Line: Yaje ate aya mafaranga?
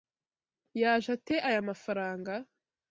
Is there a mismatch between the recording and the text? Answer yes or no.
no